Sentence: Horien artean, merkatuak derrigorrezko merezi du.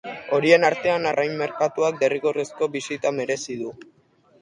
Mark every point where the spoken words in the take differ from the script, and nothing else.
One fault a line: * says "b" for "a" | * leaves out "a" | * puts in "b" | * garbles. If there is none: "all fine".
* puts in "arrain"
* puts in "bisita"